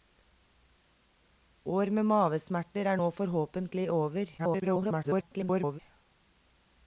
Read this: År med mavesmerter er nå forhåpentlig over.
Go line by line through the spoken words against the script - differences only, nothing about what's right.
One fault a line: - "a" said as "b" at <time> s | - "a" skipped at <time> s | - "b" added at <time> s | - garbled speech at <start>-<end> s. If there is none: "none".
- garbled speech at 4.4-5.8 s